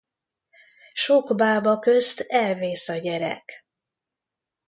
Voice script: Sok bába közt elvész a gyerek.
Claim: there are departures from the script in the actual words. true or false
false